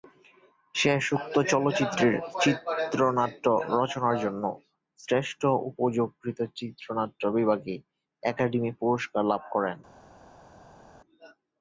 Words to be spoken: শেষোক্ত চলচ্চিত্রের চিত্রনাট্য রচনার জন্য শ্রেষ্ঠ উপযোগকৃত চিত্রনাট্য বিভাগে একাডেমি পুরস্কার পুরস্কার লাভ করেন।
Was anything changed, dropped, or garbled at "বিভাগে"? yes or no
no